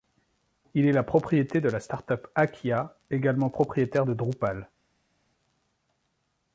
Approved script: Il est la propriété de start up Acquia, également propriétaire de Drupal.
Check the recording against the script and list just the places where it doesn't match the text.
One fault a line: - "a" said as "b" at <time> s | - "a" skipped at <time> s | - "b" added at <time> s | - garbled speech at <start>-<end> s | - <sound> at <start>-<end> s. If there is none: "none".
- "la" added at 1.7 s